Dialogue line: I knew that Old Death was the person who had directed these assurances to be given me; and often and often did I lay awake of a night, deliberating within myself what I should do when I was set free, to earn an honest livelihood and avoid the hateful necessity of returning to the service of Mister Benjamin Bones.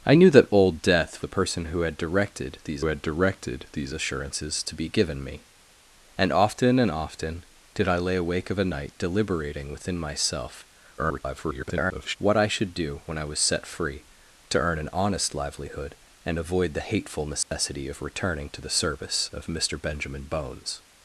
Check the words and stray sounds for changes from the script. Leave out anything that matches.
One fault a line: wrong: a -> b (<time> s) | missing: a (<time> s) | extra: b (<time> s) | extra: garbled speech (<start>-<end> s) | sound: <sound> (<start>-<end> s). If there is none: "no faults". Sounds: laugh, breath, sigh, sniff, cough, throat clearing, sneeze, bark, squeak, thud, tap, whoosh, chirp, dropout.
missing: was (1.2 s)
extra: had directed these (2.8 s)
extra: garbled speech (11.0-12.2 s)
sound: dropout (17.4-17.5 s)